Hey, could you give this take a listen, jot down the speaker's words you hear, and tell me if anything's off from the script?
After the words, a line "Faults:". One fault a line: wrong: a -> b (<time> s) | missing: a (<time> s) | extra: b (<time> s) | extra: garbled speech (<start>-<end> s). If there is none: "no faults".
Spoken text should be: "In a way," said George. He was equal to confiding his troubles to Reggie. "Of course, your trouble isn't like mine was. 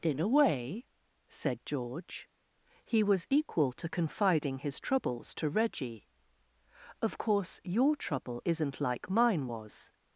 "In a way," said George. He was equal to confiding his troubles to Reggie. "Of course, your trouble isn't like mine was.
Faults:
no faults